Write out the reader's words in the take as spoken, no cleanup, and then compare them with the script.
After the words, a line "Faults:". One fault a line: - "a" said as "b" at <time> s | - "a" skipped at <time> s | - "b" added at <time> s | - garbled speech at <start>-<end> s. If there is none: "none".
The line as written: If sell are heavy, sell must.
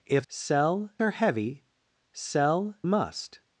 If sell are heavy, sell must.
Faults:
none